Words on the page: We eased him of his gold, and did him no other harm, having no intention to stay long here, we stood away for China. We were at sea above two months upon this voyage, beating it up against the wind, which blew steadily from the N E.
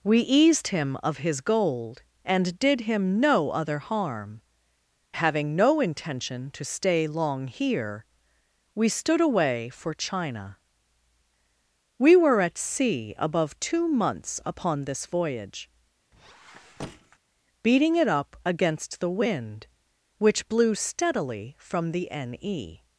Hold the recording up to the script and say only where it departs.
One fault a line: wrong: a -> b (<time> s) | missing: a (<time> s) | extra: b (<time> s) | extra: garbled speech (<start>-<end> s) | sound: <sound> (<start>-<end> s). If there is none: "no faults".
sound: squeak (16.1-17.2 s)